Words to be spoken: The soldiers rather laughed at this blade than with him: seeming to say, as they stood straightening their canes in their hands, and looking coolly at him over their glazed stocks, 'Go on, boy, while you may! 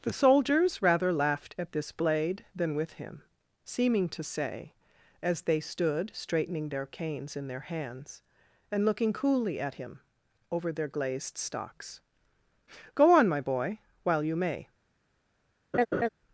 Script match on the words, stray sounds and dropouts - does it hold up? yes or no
no